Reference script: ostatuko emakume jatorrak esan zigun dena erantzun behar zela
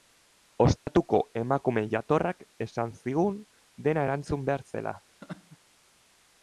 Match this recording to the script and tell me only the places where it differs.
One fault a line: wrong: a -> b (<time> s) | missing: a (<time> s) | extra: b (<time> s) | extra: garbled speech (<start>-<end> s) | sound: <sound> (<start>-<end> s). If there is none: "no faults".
sound: dropout (0.8-0.9 s)
sound: laugh (5.2-5.6 s)